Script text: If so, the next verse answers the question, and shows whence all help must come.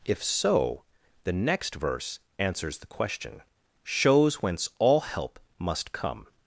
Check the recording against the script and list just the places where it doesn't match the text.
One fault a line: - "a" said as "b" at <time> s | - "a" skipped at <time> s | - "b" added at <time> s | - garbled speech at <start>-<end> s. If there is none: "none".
- "and" skipped at 3.4 s